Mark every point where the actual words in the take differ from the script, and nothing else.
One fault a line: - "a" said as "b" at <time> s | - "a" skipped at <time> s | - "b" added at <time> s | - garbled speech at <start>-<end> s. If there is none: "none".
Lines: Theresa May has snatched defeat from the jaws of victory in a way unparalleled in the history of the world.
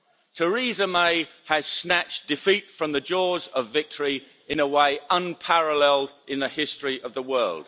none